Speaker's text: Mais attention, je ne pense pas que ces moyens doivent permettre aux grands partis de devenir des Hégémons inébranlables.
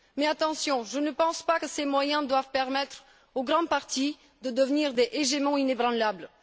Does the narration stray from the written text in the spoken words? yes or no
no